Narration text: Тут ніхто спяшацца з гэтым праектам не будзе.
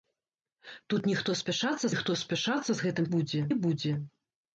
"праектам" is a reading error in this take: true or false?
true